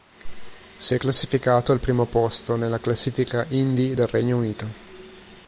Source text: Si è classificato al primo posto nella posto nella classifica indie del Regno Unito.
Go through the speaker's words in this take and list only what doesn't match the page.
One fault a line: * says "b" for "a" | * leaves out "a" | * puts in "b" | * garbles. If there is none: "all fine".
* leaves out "posto nella"